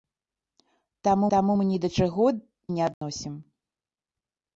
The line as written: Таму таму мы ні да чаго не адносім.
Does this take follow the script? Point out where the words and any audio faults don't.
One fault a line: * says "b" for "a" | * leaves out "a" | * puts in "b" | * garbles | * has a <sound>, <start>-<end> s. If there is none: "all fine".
* has a dropout, 2.9-3.0 s